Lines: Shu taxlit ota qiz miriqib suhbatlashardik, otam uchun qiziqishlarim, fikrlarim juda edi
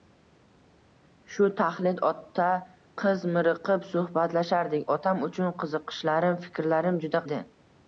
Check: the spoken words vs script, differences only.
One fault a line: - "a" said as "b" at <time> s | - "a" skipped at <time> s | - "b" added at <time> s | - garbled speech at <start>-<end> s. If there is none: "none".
none